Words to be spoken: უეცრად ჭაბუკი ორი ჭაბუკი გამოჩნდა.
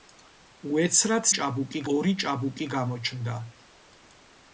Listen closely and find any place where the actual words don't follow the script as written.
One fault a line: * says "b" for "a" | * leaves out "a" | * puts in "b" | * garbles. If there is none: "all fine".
all fine